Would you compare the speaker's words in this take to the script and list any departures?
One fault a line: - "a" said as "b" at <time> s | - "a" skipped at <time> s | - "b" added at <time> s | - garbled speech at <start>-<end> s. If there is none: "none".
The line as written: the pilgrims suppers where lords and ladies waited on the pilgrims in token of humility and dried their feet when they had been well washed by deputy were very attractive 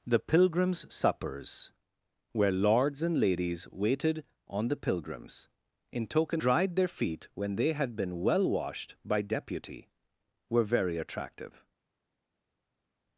- "of humility and" skipped at 6.4 s